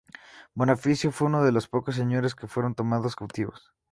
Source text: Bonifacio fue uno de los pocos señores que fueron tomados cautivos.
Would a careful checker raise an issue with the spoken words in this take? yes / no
no